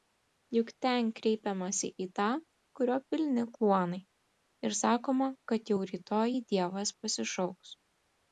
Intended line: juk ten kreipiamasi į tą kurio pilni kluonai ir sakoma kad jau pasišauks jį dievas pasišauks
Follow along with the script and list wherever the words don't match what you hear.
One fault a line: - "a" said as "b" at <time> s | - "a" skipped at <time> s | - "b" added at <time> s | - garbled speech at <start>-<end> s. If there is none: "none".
- "pasišauks" said as "rytoj" at 5.9 s